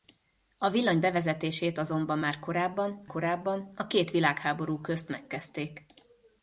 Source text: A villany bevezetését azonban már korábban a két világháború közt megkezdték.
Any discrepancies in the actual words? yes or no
yes